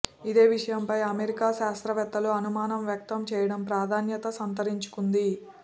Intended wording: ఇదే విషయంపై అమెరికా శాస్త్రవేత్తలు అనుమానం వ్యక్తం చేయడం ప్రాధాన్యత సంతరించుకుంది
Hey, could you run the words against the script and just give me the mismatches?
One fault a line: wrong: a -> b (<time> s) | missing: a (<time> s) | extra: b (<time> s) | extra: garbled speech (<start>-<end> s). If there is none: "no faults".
no faults